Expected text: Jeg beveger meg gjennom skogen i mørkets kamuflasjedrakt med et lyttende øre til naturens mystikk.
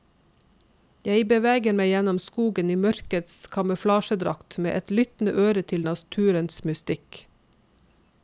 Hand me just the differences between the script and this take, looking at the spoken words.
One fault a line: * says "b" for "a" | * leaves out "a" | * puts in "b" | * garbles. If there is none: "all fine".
all fine